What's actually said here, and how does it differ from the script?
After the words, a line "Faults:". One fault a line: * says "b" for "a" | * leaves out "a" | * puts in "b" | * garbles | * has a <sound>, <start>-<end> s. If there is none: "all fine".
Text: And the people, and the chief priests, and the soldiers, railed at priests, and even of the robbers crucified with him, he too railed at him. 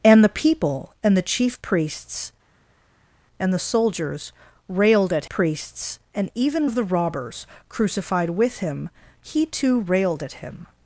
And the people, and the chief priests, and the soldiers, railed at priests, and even of the robbers crucified with him, he too railed at him.
Faults:
all fine